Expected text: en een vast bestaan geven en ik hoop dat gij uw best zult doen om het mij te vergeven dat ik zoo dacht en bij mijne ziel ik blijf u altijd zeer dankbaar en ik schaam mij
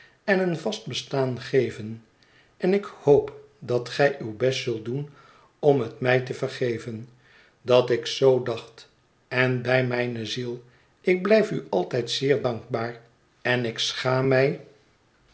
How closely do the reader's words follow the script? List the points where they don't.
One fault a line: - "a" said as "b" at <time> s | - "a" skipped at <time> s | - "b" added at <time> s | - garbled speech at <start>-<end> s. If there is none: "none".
none